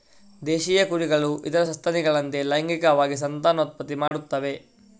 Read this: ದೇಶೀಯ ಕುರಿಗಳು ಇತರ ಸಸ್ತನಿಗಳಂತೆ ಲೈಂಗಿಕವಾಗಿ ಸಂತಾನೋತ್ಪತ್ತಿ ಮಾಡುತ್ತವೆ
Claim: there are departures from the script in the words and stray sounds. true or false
true